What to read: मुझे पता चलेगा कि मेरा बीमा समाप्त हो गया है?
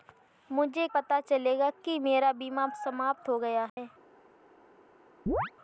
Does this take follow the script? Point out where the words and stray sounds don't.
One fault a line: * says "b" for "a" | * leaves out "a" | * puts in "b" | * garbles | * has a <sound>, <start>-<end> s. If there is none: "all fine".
* has a dropout, 3.7-3.8 s
* has a chirp, 5.3-5.5 s